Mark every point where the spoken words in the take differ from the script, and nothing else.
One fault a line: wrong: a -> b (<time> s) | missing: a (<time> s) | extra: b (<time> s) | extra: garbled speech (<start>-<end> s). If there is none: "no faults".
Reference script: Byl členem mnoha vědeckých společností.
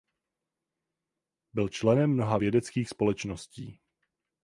no faults